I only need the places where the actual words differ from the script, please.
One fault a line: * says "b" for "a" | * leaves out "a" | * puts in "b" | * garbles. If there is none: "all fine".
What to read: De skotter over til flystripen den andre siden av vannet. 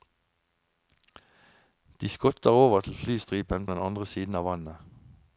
all fine